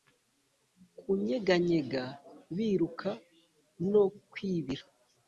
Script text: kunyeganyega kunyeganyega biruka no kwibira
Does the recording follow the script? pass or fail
fail